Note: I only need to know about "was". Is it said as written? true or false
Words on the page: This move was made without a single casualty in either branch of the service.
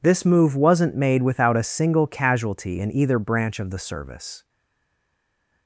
false